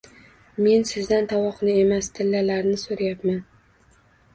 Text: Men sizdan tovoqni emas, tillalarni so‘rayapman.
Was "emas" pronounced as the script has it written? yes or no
yes